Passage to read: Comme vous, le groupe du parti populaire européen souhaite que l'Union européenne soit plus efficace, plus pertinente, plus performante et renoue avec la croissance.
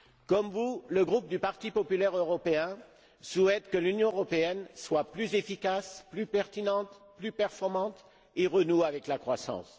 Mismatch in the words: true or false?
false